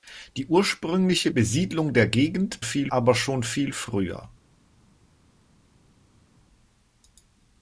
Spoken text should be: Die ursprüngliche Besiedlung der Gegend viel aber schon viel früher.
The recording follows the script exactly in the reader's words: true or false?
true